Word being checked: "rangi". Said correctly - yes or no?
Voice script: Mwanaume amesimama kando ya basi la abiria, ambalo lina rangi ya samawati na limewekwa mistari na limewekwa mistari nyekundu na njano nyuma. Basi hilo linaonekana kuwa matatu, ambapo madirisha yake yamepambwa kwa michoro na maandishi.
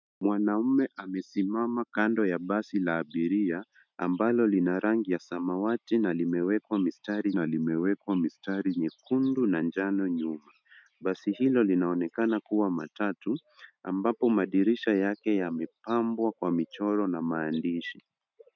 yes